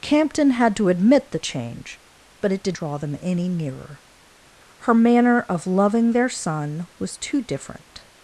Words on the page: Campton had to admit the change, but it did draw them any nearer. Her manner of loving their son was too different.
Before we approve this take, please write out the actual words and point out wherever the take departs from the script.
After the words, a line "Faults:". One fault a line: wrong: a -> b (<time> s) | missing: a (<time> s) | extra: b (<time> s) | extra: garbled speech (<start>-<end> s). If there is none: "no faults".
Campton had to admit the change, but it did draw them any nearer. Her manner of loving their son was too different.
Faults:
no faults